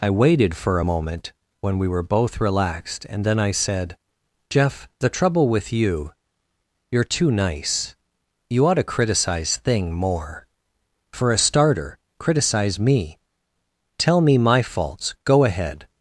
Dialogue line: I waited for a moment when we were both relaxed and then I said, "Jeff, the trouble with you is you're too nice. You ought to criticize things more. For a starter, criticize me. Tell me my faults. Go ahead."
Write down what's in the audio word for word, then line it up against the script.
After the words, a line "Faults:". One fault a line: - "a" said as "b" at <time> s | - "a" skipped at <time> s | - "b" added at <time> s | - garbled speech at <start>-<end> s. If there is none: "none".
I waited for a moment when we were both relaxed and then I said, "Jeff, the trouble with you you're too nice. You ought to criticize thing more. For a starter, criticize me. Tell me my faults. Go ahead."
Faults:
- "is" skipped at 6.1 s
- "things" said as "thing" at 9.6 s